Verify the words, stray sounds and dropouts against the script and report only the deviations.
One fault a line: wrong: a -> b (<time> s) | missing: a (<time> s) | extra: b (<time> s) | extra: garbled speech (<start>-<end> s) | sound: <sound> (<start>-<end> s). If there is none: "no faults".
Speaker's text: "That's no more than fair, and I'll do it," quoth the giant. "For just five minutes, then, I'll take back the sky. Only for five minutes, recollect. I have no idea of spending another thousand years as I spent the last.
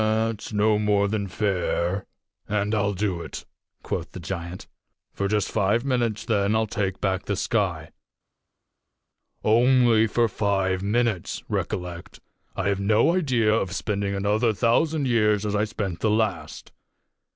no faults